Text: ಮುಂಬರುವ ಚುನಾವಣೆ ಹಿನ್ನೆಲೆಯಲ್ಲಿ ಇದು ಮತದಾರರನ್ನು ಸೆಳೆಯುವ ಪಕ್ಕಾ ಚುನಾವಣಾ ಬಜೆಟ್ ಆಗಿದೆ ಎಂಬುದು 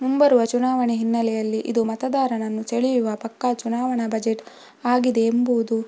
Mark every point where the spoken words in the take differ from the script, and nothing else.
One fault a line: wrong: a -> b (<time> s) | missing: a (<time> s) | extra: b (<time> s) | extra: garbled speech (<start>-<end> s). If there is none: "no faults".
no faults